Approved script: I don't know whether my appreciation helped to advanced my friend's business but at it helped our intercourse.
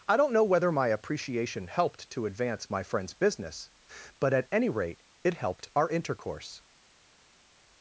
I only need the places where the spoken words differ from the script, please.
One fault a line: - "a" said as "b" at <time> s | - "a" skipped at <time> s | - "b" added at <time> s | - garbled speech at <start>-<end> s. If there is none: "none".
- "advanced" said as "advance" at 2.2 s
- "any rate" added at 4.5 s